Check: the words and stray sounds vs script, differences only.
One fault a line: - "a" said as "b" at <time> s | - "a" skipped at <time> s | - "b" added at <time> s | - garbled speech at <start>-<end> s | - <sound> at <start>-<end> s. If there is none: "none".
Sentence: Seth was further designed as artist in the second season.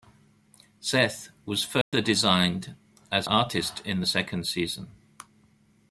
- dropout at 1.8-1.9 s